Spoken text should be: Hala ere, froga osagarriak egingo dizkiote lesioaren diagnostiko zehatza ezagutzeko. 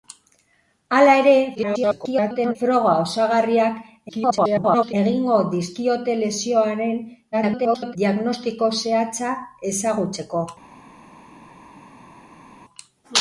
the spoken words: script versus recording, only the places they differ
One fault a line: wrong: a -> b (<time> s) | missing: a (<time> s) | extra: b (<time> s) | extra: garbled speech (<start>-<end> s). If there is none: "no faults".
extra: garbled speech (1.5-2.6 s)
extra: garbled speech (4.1-4.9 s)
extra: garbled speech (7.3-8.0 s)